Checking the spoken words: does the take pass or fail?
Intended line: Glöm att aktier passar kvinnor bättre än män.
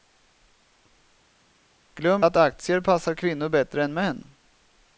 pass